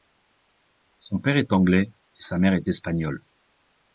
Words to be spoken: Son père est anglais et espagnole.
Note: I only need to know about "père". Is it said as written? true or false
true